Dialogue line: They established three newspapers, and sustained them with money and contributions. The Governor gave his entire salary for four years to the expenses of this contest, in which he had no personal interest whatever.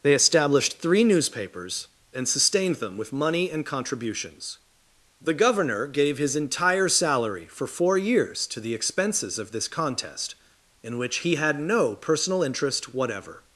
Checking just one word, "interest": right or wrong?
right